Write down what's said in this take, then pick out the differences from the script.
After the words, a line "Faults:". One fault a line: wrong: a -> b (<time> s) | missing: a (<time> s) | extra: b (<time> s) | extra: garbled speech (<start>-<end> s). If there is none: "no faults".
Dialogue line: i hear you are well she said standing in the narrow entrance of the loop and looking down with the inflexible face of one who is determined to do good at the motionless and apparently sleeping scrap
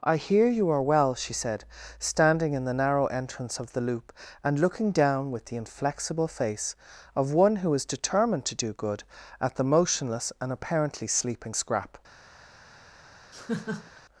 i hear you are well she said standing in the narrow entrance of the loop and looking down with the inflexible face of one who is determined to do good at the motionless and apparently sleeping scrap
Faults:
no faults